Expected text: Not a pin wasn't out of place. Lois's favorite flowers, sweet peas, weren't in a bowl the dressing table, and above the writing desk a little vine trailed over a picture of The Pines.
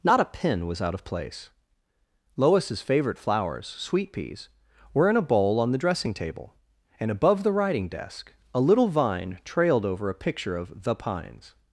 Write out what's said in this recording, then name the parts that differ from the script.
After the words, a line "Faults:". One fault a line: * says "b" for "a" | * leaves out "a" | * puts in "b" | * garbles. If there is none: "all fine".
Not a pin was out of place. Lois's favorite flowers, sweet peas, were in a bowl on the dressing table, and above the writing desk a little vine trailed over a picture of The Pines.
Faults:
* says "was" for "wasn't"
* says "were" for "weren't"
* puts in "on"